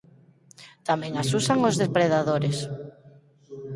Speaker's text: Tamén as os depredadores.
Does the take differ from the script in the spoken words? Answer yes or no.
yes